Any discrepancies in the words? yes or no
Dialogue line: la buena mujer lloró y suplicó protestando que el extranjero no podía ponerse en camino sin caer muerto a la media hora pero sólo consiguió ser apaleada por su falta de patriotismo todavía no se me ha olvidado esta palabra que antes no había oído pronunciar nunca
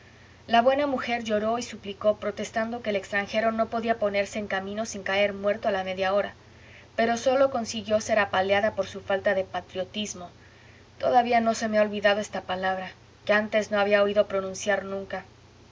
no